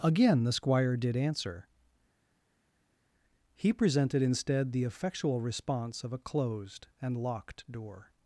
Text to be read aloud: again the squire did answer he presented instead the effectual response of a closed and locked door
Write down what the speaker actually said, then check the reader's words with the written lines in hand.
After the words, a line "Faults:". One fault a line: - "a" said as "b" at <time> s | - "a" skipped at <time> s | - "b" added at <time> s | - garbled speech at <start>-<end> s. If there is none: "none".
again the squire did answer he presented instead the effectual response of a closed and locked door
Faults:
none